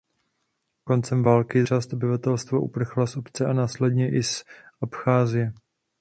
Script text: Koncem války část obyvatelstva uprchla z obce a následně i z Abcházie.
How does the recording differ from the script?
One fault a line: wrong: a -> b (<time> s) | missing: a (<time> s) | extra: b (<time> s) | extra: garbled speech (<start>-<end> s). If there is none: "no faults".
no faults